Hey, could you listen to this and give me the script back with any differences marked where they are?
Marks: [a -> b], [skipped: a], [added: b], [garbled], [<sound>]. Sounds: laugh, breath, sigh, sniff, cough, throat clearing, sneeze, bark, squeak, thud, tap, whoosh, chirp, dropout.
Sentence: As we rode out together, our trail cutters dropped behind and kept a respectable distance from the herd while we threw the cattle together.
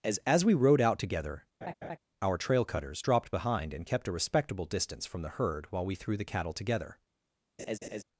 As [added: as] we rode out together, [laugh] our trail cutters dropped behind and kept a respectable distance from the herd while we threw the cattle together. [laugh]